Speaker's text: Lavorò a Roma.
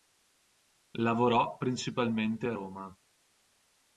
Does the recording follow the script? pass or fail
fail